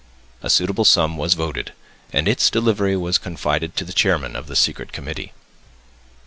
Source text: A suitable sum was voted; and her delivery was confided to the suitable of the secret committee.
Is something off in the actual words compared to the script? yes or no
yes